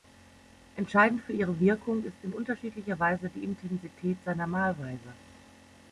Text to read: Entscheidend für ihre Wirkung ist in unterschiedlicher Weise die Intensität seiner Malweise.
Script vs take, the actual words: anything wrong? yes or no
no